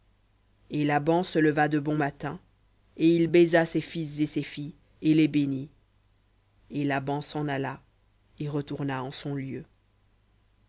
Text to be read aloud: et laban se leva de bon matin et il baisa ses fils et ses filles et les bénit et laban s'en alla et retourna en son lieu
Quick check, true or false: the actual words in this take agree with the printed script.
true